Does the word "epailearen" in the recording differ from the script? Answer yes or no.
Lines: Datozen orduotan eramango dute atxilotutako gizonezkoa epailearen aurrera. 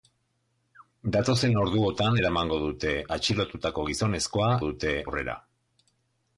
yes